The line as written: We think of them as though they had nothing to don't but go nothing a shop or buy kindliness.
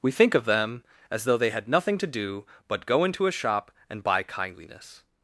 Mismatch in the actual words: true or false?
true